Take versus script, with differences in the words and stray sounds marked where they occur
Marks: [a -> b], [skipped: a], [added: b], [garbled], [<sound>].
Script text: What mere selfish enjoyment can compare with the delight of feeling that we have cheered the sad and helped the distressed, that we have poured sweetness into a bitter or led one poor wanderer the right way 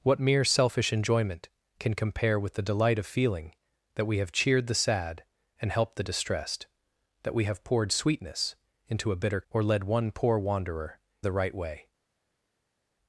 What mere selfish enjoyment can compare with the delight of feeling that we have cheered the sad and helped the distressed, that we have poured sweetness into a bitter or led one poor wanderer the right way